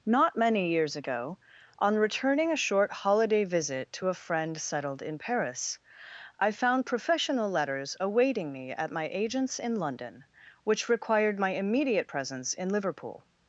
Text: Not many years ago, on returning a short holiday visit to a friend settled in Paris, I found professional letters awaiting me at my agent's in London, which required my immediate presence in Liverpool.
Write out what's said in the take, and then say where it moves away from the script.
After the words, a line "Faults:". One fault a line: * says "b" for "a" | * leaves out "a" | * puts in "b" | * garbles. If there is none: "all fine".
Not many years ago, on returning a short holiday visit to a friend settled in Paris, I found professional letters awaiting me at my agent's in London, which required my immediate presence in Liverpool.
Faults:
all fine